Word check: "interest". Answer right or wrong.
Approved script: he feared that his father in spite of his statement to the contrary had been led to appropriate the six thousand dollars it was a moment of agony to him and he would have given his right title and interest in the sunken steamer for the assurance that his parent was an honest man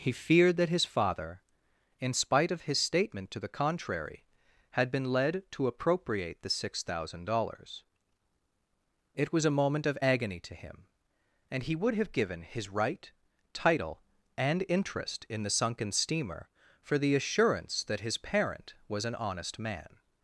right